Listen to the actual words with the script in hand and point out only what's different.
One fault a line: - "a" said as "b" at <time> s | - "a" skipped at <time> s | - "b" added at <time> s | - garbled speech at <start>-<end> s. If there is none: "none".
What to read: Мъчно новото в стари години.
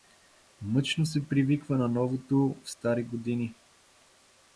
- "се привиква на" added at 1.0 s